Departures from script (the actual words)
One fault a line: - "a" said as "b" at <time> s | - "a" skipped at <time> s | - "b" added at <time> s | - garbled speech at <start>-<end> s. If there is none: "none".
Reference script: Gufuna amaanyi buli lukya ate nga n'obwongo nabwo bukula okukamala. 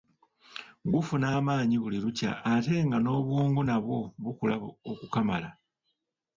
none